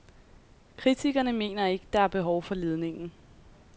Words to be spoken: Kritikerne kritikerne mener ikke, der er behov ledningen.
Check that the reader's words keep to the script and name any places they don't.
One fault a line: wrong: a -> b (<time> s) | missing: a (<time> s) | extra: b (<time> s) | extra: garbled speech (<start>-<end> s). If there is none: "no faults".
missing: kritikerne (1.3 s)
extra: for (2.4 s)